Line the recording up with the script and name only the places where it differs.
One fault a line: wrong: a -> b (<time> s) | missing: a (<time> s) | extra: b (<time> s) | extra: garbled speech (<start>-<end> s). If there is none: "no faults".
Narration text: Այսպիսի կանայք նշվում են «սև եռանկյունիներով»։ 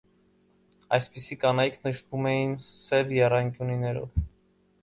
wrong: են -> էին (2.3 s)